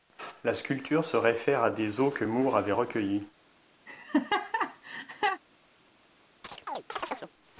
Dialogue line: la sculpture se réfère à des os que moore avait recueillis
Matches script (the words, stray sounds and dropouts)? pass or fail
fail